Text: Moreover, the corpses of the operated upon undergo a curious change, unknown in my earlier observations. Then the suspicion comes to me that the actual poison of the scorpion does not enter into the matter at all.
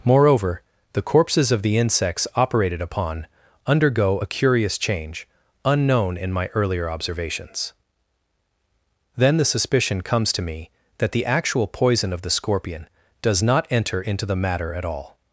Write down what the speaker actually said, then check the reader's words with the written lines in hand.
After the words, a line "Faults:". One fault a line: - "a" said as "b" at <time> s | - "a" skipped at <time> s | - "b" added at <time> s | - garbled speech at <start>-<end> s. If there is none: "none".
Moreover, the corpses of the insects operated upon undergo a curious change, unknown in my earlier observations. Then the suspicion comes to me that the actual poison of the scorpion does not enter into the matter at all.
Faults:
- "insects" added at 1.8 s